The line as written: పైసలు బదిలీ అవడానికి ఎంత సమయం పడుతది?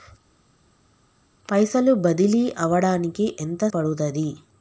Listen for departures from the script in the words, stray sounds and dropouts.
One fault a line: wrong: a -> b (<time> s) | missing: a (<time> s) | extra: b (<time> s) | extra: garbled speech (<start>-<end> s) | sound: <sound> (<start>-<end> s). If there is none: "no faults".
missing: సమయం (3.7 s)